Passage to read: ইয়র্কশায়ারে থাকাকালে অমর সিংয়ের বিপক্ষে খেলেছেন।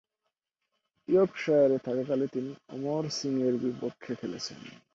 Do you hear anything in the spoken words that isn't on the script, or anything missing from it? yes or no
yes